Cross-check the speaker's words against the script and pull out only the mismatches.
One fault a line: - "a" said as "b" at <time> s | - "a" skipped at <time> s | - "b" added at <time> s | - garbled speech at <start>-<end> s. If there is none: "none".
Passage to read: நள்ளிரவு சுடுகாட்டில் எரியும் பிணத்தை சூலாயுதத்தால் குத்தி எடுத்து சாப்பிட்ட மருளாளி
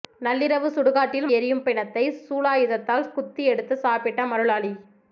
none